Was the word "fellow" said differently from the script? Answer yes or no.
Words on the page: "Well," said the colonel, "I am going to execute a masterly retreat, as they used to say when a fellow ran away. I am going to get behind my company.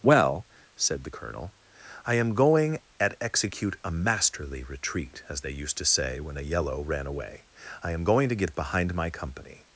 yes